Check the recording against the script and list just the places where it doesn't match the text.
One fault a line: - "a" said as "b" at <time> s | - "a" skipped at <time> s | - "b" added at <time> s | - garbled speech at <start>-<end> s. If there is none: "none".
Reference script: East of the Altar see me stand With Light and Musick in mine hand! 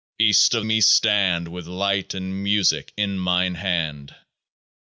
- "the Altar see" skipped at 0.7 s